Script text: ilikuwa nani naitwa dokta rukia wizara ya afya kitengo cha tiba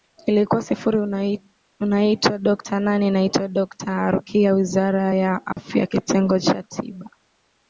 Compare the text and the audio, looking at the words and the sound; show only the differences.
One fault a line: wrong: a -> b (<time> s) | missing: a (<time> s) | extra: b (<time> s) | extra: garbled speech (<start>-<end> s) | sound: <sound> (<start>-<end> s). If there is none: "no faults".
extra: sifuri unaitwa dokta (0.6 s)
sound: dropout (5.5-5.6 s)